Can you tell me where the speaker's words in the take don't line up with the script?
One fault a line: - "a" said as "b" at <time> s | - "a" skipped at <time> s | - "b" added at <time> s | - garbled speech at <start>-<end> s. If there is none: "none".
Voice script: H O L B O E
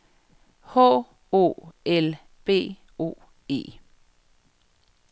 none